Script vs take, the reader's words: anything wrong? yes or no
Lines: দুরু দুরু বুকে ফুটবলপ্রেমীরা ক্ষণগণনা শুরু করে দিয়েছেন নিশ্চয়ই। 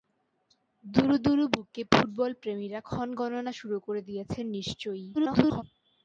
yes